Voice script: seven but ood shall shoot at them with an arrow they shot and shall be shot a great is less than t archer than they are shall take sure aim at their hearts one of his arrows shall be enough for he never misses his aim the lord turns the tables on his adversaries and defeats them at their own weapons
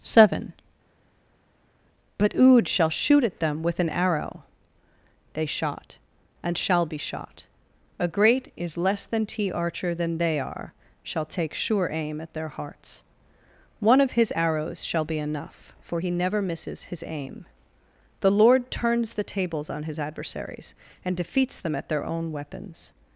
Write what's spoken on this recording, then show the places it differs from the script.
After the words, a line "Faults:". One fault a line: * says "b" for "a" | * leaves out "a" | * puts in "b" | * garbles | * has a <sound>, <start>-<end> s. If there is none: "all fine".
seven but ood shall shoot at them with an arrow they shot and shall be shot a great is less than t archer than they are shall take sure aim at their hearts one of his arrows shall be enough for he never misses his aim the lord turns the tables on his adversaries and defeats them at their own weapons
Faults:
all fine